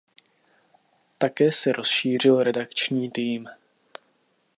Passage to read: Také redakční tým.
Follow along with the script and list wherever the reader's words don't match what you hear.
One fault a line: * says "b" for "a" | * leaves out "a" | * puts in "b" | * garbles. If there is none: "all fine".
* puts in "se rozšířil"